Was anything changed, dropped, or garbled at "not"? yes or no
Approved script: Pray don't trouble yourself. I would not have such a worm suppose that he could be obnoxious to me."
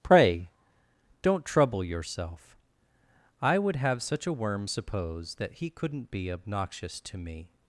yes